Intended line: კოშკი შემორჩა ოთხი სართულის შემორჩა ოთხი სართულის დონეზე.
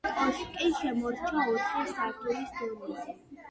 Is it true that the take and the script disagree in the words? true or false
true